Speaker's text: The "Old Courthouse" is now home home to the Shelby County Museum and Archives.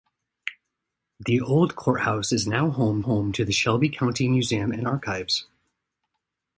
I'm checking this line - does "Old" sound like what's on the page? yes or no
yes